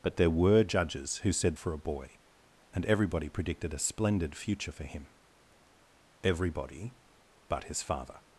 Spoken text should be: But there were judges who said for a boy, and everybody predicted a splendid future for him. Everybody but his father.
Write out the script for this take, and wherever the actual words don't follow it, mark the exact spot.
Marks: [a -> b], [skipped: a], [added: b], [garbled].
But there were judges who said for a boy, and everybody predicted a splendid future for him. Everybody but his father.